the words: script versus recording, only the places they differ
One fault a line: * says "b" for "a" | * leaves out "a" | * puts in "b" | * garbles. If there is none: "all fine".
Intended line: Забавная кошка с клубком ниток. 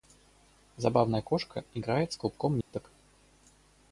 * puts in "играет"